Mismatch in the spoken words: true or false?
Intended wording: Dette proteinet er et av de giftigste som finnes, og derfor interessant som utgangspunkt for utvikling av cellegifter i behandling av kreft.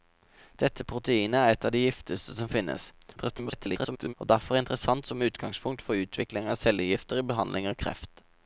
true